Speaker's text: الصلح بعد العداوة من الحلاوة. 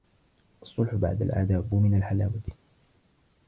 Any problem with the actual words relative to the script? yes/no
no